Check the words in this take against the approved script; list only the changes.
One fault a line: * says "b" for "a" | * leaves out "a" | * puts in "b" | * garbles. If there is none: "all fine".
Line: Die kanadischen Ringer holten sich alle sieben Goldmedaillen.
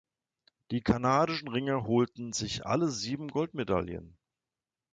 all fine